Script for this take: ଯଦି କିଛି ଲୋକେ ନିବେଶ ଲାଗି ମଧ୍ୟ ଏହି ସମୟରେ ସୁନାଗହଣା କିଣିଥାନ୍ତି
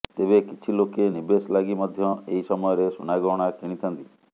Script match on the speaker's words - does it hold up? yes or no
no